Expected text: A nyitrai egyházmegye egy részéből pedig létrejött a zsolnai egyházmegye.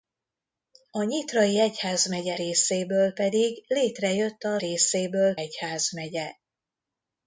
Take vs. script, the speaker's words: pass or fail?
fail